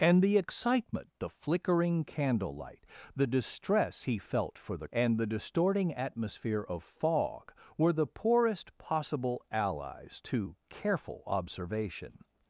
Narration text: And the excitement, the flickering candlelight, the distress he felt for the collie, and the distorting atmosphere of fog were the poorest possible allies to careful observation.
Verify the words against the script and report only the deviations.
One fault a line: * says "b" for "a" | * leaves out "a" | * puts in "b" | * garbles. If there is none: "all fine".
* leaves out "collie"